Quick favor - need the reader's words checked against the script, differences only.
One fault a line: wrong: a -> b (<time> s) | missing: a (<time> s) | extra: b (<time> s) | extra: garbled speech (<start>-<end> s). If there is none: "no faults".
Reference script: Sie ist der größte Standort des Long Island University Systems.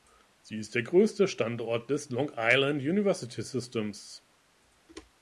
no faults